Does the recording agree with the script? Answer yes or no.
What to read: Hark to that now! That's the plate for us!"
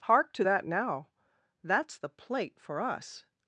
yes